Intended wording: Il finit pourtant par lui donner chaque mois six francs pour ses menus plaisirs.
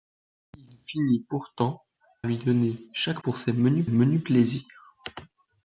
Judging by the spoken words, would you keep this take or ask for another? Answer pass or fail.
fail